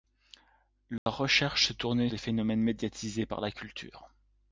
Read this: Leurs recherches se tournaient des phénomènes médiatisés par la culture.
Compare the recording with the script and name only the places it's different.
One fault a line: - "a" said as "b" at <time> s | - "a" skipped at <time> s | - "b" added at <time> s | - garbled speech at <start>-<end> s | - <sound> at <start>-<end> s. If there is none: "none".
- dropout at 1.0-1.1 s